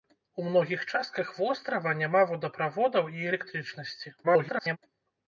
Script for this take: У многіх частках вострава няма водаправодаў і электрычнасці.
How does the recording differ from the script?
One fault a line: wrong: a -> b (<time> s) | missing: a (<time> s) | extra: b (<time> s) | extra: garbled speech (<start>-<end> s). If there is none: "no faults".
extra: garbled speech (4.2-4.8 s)